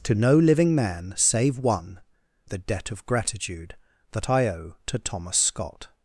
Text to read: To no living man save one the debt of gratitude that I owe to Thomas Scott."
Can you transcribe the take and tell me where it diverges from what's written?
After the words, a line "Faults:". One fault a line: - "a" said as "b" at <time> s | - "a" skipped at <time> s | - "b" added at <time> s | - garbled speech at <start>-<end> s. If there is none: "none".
To no living man save one the debt of gratitude that I owe to Thomas Scott."
Faults:
none